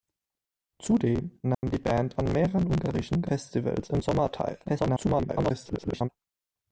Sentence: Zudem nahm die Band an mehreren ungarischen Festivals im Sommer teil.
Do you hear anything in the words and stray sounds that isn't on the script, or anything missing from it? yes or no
yes